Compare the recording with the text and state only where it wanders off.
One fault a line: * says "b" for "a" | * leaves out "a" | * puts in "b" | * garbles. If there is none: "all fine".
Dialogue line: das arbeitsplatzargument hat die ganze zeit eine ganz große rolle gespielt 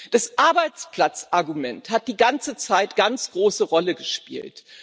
* leaves out "eine"